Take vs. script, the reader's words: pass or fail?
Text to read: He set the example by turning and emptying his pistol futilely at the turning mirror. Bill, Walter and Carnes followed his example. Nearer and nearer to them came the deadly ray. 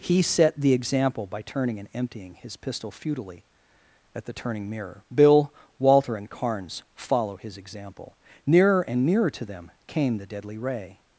fail